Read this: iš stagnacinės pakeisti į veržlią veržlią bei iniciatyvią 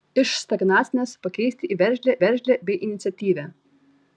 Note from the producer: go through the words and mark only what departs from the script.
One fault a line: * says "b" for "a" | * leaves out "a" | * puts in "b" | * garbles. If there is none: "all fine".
all fine